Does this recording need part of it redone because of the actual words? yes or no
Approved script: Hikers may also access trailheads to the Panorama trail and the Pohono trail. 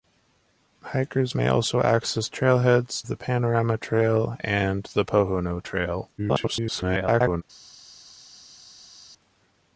yes